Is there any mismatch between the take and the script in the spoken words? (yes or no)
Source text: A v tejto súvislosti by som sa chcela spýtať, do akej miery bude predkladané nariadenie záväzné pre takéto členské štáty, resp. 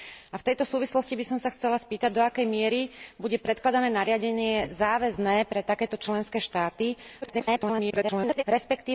yes